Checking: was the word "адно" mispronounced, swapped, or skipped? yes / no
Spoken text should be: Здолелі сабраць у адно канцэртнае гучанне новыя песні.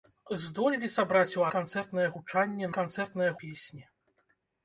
yes